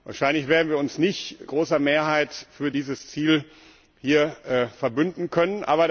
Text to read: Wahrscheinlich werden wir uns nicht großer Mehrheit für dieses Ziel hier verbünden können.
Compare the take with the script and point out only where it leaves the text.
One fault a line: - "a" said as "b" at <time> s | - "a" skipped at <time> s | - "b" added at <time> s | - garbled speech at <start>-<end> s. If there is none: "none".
none